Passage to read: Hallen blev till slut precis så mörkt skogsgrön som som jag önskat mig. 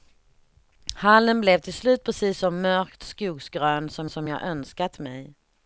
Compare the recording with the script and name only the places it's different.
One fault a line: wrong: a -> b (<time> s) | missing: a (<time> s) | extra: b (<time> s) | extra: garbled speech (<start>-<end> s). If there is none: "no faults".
no faults